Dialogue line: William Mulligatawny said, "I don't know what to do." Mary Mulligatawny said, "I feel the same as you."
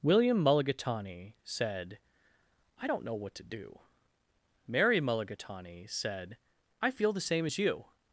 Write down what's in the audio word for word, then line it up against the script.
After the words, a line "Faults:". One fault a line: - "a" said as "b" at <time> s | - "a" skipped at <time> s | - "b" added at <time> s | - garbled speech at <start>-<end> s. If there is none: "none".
William Mulligatawny said, "I don't know what to do." Mary Mulligatawny said, "I feel the same as you."
Faults:
none